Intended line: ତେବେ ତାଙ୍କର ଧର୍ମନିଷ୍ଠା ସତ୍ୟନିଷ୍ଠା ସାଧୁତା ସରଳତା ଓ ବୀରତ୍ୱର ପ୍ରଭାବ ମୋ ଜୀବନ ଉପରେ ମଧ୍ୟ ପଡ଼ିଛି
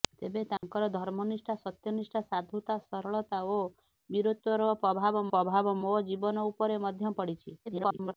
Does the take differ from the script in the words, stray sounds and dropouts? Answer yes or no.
yes